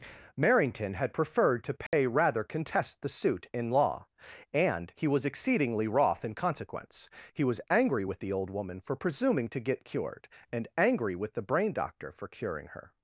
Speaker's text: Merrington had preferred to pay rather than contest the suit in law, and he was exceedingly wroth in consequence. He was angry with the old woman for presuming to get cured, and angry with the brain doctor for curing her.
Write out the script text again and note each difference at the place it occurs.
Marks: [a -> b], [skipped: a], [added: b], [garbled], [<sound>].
Merrington had preferred to pay [dropout] rather [skipped: than] contest the suit in law, and he was exceedingly wroth in consequence. He was angry with the old woman for presuming to get cured, and angry with the brain doctor for curing her.